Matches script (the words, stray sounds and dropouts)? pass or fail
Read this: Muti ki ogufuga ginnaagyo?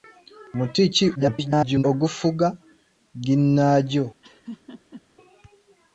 fail